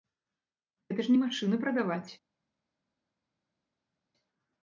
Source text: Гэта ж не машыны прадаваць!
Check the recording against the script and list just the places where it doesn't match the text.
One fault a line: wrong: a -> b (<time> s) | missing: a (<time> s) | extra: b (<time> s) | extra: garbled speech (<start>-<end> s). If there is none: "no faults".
no faults